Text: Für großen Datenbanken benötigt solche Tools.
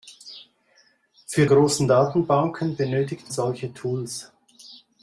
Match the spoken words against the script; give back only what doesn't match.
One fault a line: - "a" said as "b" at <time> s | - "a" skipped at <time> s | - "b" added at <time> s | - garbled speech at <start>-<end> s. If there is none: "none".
none